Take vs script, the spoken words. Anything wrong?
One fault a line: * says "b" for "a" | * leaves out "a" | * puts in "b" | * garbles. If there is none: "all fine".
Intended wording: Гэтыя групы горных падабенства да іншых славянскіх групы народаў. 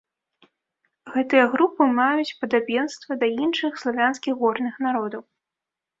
* says "маюць" for "горных"
* says "горных" for "групы"